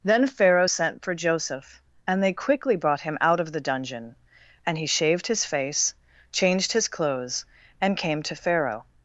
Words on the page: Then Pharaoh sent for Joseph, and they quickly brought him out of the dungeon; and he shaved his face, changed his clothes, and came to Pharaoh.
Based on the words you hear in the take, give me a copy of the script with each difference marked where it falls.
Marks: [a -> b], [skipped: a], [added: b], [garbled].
Then Pharaoh sent for Joseph, and they quickly brought him out of the dungeon; and he shaved his face, changed his clothes, and came to Pharaoh.